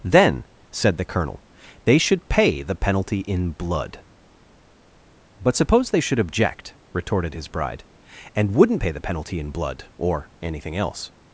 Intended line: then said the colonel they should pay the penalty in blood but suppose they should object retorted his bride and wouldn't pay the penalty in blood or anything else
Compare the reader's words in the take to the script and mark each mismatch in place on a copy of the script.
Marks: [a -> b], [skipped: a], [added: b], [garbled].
then said the colonel they should pay the penalty in blood but suppose they should object retorted his bride and wouldn't pay the penalty in blood or anything else